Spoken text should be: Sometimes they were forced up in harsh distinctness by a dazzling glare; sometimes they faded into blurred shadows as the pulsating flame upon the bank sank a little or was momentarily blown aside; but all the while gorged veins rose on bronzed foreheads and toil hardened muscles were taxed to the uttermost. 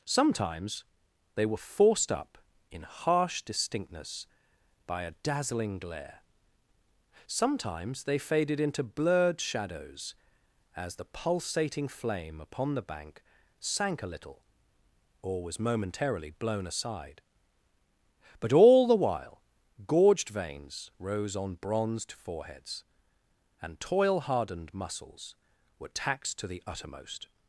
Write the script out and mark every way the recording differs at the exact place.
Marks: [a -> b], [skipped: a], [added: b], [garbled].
Sometimes they were forced up in harsh distinctness by a dazzling glare; sometimes they faded into blurred shadows as the pulsating flame upon the bank sank a little or was momentarily blown aside; but all the while gorged veins rose on bronzed foreheads and toil hardened muscles were taxed to the uttermost.